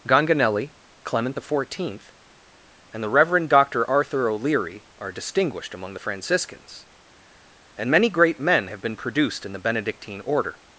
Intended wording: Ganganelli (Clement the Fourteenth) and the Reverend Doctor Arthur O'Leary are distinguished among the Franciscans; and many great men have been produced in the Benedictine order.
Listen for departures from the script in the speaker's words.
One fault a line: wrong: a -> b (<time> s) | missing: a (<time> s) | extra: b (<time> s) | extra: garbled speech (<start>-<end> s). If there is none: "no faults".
no faults